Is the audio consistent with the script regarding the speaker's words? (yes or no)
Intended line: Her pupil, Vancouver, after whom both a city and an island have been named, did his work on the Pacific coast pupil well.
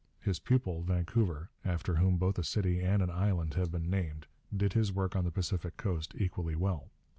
no